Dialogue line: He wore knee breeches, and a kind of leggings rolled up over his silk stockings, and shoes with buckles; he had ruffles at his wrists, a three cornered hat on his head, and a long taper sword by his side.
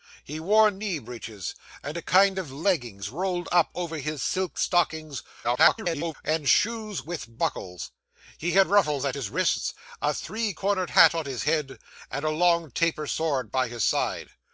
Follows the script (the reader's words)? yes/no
no